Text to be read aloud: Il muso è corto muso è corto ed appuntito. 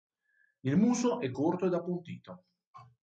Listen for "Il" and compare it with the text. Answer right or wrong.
right